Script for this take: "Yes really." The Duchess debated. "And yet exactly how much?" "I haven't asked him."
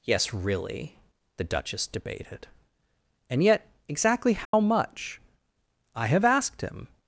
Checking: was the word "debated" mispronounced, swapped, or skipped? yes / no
no